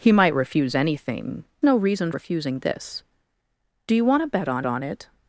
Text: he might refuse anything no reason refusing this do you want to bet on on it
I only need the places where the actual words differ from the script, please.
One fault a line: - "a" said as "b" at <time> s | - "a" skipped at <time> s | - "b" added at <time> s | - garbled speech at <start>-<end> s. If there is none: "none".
none